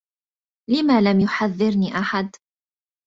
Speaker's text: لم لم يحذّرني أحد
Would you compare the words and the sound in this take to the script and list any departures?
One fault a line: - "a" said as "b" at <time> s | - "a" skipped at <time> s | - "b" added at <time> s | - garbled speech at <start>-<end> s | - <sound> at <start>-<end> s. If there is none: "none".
none